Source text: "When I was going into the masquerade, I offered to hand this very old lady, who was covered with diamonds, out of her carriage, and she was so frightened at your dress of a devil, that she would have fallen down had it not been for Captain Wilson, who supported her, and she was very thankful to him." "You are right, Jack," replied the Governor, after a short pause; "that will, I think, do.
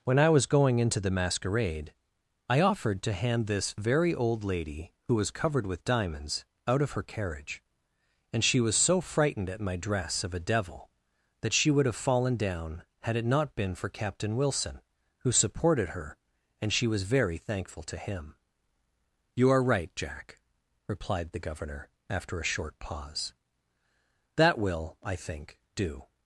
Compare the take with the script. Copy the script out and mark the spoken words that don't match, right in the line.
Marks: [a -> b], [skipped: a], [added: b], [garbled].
"When I was going into the masquerade, I offered to hand this very old lady, who was covered with diamonds, out of her carriage, and she was so frightened at [your -> my] dress of a devil, that she would have fallen down had it not been for Captain Wilson, who supported her, and she was very thankful to him." "You are right, Jack," replied the Governor, after a short pause; "that will, I think, do.